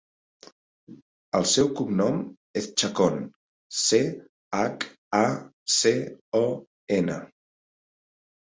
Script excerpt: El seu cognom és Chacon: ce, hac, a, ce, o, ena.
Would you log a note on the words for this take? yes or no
no